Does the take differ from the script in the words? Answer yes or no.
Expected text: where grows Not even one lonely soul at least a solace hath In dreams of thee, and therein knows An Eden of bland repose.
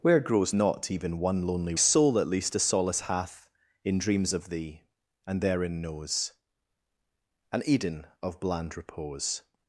no